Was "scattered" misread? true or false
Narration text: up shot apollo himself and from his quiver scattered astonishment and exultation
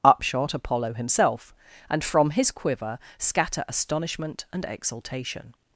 true